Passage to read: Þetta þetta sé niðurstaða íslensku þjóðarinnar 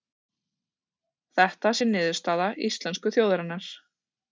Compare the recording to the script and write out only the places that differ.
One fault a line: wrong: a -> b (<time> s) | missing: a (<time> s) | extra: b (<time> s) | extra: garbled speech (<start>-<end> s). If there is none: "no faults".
missing: þetta (1.8 s)